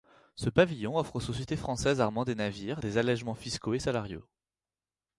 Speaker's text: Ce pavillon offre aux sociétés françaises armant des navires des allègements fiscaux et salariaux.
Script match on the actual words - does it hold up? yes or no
yes